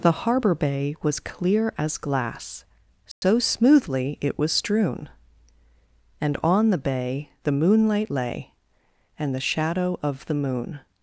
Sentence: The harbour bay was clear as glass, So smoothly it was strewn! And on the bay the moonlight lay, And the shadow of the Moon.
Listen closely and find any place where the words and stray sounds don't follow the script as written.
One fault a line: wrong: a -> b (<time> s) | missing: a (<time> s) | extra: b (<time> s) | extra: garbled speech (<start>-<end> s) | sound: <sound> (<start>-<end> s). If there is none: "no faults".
sound: dropout (3.1-3.2 s)